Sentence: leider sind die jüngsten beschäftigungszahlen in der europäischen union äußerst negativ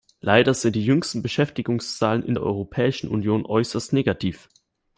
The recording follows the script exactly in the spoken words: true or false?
true